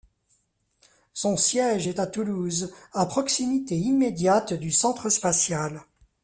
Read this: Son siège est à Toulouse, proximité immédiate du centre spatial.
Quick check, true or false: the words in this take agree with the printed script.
false